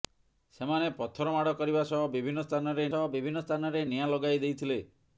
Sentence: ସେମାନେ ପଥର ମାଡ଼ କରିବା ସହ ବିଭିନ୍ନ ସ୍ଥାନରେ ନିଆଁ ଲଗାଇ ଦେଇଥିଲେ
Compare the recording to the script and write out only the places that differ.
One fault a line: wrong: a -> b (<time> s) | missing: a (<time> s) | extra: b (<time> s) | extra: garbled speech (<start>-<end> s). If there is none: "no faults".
extra: ସହ ବିଭିନ୍ନ ସ୍ଥାନରେ (2.9 s)